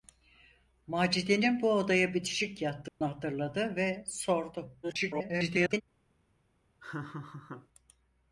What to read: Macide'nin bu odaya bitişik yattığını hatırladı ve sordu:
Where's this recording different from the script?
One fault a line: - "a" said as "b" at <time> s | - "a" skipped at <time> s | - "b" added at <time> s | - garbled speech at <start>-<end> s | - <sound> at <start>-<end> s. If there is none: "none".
- dropout at 2.9-3.0 s
- garbled speech at 4.8-5.8 s
- laugh at 6.8-7.7 s